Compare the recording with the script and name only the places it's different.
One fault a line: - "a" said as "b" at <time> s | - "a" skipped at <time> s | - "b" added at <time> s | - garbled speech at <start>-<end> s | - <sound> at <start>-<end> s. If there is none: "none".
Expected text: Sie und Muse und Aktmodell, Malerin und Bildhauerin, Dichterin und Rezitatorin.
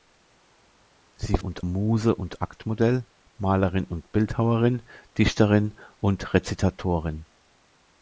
none